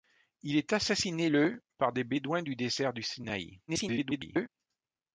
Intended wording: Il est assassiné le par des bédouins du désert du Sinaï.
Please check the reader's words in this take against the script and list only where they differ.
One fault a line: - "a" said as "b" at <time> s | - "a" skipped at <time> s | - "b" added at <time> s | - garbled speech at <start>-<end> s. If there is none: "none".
- garbled speech at 3.7-4.5 s